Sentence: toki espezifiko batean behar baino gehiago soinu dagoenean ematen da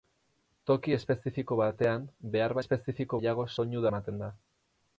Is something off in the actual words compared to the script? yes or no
yes